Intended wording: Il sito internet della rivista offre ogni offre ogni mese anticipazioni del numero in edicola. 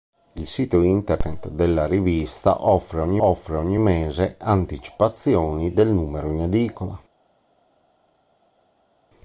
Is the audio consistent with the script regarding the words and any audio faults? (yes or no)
yes